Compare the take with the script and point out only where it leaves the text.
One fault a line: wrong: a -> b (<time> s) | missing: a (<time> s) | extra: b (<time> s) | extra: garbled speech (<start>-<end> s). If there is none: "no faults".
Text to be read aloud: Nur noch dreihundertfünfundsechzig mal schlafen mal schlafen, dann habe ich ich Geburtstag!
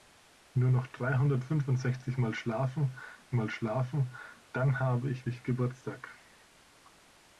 no faults